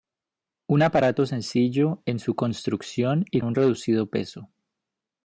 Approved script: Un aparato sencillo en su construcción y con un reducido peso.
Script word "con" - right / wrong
wrong